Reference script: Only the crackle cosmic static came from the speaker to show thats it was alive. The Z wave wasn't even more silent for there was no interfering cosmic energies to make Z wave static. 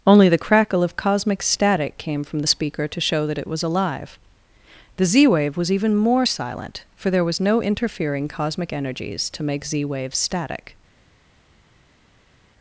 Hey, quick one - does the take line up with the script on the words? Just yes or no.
no